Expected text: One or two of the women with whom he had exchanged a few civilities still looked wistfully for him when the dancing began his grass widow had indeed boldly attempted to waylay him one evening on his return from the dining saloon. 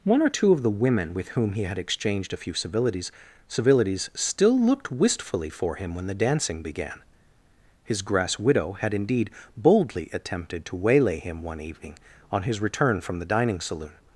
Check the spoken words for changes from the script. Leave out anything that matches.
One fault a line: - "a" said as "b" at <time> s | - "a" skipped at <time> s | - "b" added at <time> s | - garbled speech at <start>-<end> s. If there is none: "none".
- "civilities" added at 3.5 s